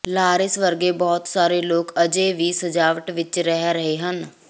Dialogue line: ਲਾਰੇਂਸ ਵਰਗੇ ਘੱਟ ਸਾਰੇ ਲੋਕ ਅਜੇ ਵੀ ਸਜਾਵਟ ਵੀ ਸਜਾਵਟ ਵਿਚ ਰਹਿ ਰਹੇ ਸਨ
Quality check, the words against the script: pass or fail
fail